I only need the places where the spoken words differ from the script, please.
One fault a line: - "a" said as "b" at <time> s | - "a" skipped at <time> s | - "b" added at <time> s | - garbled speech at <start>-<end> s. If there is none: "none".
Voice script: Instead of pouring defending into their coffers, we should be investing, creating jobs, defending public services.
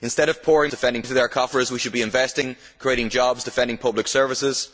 none